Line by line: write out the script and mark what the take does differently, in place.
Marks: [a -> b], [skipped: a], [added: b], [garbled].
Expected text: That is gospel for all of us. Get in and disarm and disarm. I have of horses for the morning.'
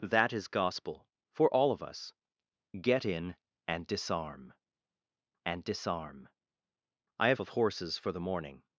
That is gospel for all of us. Get in and disarm and disarm. I have of horses for the morning.'